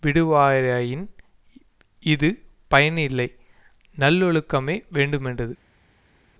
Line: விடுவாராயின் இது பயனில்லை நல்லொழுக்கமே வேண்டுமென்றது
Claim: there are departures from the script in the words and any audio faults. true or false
false